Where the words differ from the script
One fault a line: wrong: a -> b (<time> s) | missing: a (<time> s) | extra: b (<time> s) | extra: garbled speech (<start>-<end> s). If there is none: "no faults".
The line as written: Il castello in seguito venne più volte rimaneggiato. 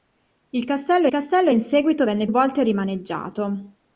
extra: castello (1.1 s)
missing: più (2.3 s)